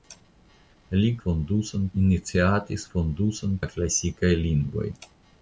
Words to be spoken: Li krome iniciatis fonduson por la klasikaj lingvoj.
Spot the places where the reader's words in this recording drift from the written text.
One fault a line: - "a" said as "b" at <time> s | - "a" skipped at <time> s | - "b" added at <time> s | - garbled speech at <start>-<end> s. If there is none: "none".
- "krome" said as "fonduson" at 1.2 s
- "por" skipped at 3.6 s